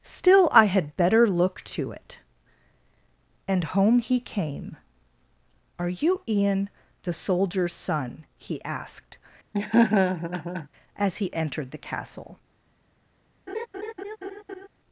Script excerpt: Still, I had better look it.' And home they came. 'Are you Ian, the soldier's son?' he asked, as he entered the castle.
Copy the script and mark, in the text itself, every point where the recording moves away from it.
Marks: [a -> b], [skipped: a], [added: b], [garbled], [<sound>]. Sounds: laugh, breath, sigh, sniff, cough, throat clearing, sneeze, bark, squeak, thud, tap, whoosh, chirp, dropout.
Still, I had better look [added: to] it.' And home [they -> he] came. 'Are you Ian, the soldier's son?' he asked, [laugh] as he entered the castle. [laugh]